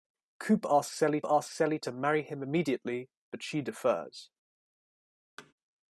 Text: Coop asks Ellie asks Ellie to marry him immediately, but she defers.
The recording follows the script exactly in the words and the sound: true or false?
false